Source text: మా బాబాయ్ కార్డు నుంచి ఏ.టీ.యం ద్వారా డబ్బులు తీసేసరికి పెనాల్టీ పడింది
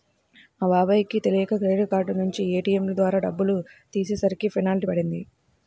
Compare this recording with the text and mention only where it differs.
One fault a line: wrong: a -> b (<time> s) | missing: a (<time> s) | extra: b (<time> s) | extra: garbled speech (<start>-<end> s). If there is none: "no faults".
extra: కి తెలియక క్రెడిట్ (1.1 s)